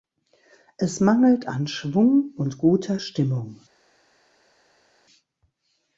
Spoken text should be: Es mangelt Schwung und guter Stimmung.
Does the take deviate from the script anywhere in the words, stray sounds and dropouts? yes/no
yes